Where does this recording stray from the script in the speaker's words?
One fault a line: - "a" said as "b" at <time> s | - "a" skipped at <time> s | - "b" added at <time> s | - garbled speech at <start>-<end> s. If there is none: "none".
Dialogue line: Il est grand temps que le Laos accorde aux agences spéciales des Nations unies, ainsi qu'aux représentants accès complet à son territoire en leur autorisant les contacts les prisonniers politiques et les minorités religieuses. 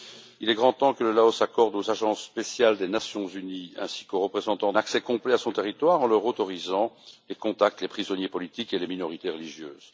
none